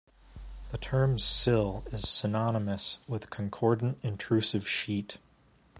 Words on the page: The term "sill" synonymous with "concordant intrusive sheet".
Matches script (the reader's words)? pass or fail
fail